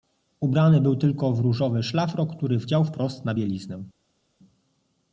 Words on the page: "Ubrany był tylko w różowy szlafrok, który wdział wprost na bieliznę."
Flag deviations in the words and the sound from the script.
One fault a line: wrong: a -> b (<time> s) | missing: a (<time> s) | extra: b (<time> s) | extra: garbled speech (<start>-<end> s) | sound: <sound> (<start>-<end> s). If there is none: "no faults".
no faults